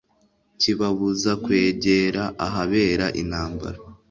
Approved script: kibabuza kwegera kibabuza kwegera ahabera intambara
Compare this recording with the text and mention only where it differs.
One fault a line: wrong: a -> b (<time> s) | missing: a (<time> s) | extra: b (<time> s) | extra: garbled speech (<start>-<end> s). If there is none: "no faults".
missing: kibabuza kwegera (2.2 s)